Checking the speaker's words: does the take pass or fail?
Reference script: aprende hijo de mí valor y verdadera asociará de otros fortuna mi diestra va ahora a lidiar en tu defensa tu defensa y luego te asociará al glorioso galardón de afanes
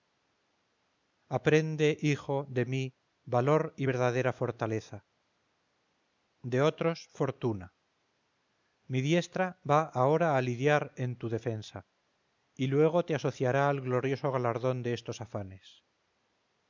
fail